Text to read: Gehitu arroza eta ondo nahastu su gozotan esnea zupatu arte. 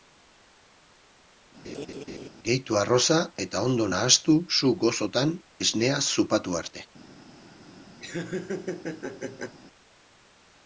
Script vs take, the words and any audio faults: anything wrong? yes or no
yes